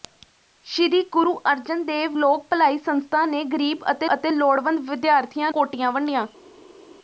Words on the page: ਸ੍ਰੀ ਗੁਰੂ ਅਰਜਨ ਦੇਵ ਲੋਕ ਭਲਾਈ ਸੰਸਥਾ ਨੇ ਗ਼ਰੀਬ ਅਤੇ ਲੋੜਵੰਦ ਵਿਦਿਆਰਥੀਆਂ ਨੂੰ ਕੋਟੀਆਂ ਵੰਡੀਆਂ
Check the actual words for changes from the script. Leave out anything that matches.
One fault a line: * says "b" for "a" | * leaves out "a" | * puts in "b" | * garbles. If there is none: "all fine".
* puts in "ਅਤੇ"
* leaves out "ਨੂੰ"